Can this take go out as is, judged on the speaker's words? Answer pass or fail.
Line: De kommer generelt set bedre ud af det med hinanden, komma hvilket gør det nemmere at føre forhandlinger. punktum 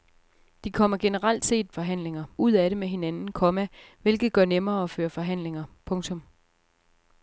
fail